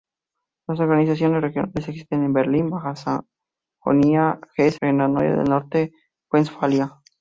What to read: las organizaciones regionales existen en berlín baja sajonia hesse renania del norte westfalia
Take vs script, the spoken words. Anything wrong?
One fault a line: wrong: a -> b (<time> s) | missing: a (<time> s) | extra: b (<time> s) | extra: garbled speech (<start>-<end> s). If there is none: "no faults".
no faults